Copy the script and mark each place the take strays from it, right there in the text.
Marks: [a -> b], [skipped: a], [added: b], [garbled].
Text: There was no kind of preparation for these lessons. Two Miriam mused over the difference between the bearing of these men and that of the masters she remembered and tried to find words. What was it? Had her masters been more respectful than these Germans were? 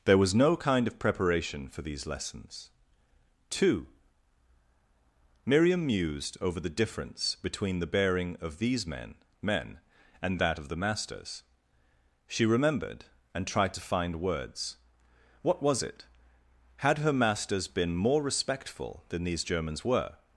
There was no kind of preparation for these lessons. Two Miriam mused over the difference between the bearing of these men [added: men] and that of the masters she remembered and tried to find words. What was it? Had her masters been more respectful than these Germans were?